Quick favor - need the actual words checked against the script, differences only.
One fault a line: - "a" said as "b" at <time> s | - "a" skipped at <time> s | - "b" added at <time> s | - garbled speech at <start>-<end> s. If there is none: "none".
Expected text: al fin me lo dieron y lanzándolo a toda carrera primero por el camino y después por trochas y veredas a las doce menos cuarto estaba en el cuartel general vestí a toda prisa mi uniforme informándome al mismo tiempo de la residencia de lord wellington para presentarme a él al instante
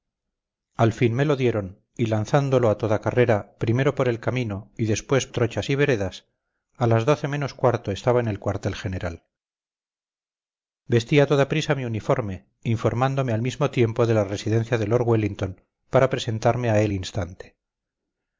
- "por" skipped at 5.3 s
- "al" skipped at 16.9 s